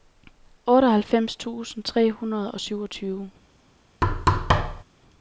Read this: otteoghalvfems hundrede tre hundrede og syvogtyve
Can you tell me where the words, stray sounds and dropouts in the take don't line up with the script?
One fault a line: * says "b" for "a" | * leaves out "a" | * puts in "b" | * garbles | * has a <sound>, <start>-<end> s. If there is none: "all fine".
* says "tusind" for "hundrede"
* has a thud, 4.0-4.8 s